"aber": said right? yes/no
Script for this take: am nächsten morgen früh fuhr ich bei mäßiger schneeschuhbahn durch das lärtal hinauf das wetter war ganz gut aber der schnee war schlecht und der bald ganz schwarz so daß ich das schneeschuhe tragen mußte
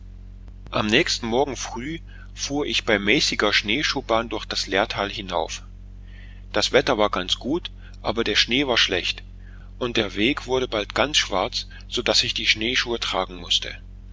yes